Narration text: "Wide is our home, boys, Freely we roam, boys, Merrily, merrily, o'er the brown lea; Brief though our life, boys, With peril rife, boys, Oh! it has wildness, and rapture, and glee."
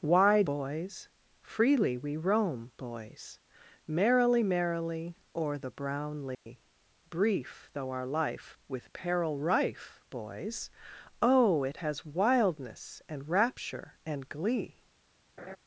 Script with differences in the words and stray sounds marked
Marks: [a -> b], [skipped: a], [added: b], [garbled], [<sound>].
"Wide [skipped: is our home,] boys, Freely we roam, boys, Merrily, merrily, o'er the brown lea; [dropout] Brief though our life, [skipped: boys,] With peril rife, boys, Oh! it has wildness, and rapture, and glee." [laugh]